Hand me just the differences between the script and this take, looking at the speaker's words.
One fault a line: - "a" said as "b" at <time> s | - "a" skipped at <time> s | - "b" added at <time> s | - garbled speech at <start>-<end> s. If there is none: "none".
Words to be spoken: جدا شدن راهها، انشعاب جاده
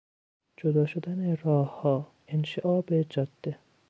none